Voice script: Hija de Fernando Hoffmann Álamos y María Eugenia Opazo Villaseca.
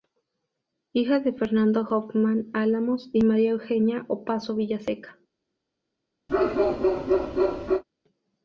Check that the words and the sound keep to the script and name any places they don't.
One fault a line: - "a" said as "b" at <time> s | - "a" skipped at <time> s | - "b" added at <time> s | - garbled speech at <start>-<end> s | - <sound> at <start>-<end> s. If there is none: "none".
- bark at 6.3-7.8 s